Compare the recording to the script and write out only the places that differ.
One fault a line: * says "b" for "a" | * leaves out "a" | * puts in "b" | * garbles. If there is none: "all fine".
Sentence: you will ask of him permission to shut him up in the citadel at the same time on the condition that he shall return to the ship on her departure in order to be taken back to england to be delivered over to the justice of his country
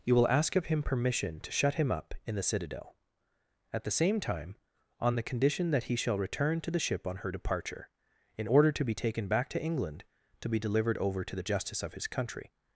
all fine